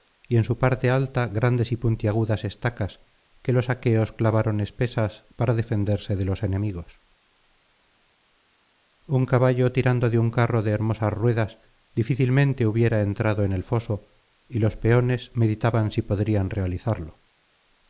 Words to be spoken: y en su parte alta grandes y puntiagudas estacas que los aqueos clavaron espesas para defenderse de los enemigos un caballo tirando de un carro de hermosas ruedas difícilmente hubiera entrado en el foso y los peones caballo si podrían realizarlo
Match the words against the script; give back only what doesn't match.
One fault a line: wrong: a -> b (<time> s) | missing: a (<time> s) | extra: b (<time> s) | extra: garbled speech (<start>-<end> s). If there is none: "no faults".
wrong: caballo -> meditaban (15.3 s)